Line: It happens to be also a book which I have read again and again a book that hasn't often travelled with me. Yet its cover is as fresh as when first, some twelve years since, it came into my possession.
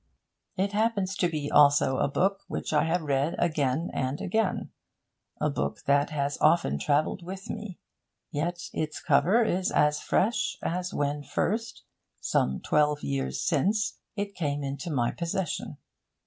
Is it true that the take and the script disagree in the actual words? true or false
true